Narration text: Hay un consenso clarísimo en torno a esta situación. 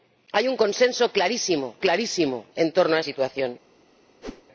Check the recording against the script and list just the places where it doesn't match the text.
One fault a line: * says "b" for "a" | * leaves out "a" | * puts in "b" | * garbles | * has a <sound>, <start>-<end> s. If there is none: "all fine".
* puts in "clarísimo"
* leaves out "esta"
* has a whoosh, 4.2-4.4 s